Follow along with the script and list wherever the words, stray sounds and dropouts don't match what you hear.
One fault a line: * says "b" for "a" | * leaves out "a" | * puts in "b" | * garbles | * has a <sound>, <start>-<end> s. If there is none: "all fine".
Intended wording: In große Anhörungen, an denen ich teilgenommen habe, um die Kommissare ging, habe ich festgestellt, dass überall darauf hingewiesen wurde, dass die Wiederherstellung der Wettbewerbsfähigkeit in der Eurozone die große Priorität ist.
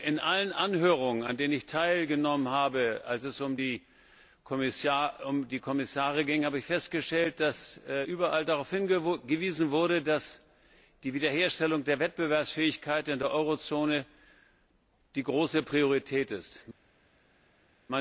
* says "allen" for "große"
* puts in "als es"